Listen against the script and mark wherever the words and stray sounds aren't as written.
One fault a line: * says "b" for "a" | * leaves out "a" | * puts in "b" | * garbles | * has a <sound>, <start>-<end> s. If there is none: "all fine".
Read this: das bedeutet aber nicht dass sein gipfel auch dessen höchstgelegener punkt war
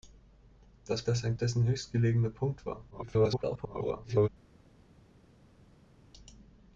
* leaves out "bedeutet aber nicht"
* leaves out "gipfel auch"
* garbles